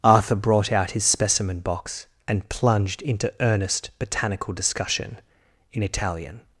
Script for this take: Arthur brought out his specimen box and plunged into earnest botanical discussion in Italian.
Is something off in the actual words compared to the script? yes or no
no